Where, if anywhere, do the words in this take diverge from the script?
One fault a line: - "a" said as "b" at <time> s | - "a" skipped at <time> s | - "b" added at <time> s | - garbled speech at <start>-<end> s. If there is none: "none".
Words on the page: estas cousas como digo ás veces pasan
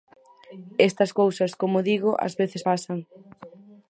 none